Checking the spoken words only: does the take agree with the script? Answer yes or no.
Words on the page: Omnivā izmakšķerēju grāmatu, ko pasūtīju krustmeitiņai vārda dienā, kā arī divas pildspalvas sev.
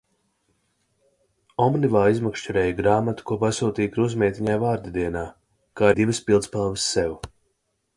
no